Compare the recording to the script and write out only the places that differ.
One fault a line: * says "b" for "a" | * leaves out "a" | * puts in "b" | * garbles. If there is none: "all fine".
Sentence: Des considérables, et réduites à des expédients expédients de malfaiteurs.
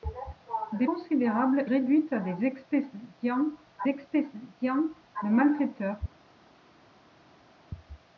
all fine